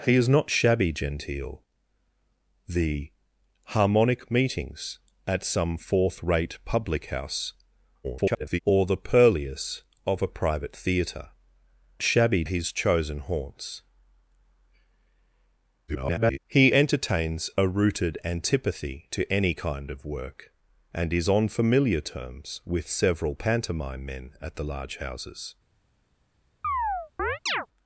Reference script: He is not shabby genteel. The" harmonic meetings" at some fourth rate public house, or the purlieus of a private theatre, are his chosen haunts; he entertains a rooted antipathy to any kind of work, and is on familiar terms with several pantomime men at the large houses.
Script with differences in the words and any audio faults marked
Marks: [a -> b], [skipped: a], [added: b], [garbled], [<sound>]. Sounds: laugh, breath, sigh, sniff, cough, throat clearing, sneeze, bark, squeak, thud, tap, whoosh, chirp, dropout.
He is not shabby genteel. The" harmonic meetings" at some fourth rate public house, [garbled] or the purlieus of a private theatre, [are -> shabby] his chosen haunts; [garbled] he entertains a rooted antipathy to any kind of work, and is on familiar terms with several pantomime men at the large houses. [chirp]